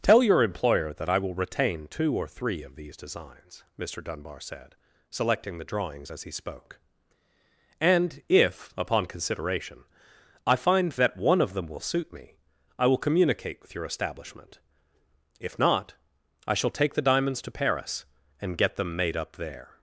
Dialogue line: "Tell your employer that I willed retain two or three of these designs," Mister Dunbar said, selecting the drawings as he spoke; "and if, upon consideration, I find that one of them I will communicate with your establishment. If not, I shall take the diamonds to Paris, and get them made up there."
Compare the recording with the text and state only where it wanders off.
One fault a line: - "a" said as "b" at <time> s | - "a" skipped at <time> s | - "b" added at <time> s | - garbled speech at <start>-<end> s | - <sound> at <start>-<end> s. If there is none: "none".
- "willed" said as "will" at 1.2 s
- "will suit me" added at 11.7 s